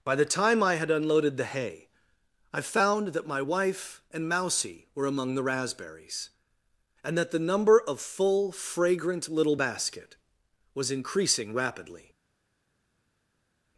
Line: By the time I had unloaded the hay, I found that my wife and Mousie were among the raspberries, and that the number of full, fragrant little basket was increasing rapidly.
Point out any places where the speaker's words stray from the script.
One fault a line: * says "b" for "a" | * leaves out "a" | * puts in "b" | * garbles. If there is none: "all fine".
all fine